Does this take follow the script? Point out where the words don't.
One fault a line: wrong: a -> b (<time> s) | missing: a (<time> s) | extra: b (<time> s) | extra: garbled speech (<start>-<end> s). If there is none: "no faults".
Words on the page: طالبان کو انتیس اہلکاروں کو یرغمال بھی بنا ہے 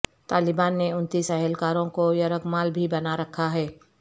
wrong: کو -> نے (0.8 s)
extra: رکھا (3.2 s)